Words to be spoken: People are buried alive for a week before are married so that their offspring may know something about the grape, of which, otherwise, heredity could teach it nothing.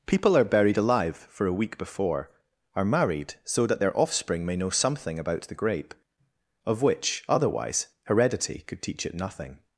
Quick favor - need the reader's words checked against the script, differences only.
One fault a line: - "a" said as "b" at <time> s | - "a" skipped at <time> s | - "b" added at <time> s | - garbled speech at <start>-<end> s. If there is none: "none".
none